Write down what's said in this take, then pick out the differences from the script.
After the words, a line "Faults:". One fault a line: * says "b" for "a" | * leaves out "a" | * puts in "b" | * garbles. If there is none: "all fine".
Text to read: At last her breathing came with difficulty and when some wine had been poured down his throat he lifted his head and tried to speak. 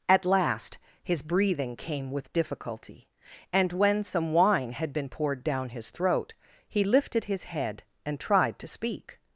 At last his breathing came with difficulty and when some wine had been poured down his throat he lifted his head and tried to speak.
Faults:
* says "his" for "her"